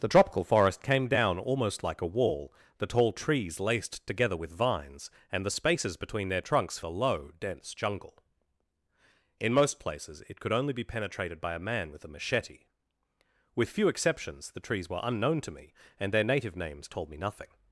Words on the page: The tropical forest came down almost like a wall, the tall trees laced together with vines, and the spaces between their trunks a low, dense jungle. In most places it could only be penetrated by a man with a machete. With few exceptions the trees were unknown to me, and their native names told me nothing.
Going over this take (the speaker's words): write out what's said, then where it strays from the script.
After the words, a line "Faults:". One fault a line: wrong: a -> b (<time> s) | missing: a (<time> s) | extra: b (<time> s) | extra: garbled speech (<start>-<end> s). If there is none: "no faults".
The tropical forest came down almost like a wall, the tall trees laced together with vines, and the spaces between their trunks a low, dense jungle. In most places it could only be penetrated by a man with a machete. With few exceptions the trees were unknown to me, and their native names told me nothing.
Faults:
no faults